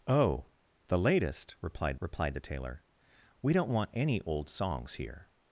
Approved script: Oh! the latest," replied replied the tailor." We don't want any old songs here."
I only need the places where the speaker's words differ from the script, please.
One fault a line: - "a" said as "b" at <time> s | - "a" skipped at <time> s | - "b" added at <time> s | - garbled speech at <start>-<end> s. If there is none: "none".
none